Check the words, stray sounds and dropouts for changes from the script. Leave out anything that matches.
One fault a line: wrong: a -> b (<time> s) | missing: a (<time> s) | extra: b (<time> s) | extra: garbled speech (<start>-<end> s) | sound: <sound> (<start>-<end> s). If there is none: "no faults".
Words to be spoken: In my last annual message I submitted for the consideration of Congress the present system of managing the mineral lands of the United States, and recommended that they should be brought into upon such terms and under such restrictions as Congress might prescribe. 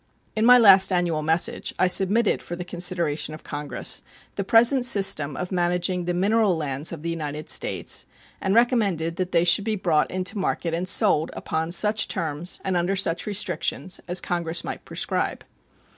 extra: market and sold (10.4 s)